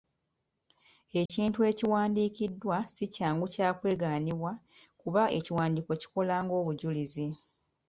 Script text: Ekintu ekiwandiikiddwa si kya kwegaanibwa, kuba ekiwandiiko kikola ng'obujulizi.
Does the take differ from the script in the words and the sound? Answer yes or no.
yes